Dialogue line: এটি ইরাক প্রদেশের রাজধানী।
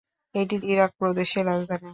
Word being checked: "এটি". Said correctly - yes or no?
yes